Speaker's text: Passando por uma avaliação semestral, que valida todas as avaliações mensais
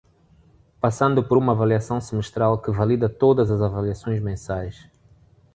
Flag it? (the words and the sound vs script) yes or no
no